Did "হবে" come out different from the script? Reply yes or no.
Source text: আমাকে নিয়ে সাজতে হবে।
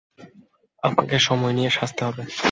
no